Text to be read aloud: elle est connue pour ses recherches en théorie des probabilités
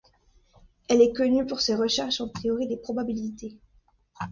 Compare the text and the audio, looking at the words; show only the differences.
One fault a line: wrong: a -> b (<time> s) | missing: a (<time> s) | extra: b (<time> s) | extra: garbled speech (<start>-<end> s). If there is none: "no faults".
no faults